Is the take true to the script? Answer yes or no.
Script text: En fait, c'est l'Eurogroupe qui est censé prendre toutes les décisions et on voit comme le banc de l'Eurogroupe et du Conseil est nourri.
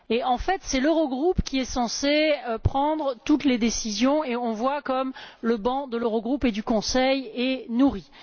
yes